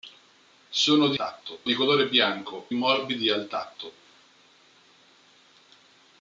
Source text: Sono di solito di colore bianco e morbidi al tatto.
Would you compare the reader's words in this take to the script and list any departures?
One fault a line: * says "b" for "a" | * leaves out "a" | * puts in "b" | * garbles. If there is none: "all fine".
* says "tatto" for "solito"
* leaves out "e"